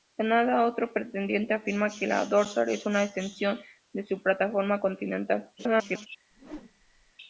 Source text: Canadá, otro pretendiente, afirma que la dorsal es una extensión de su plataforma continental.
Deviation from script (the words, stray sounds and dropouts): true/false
true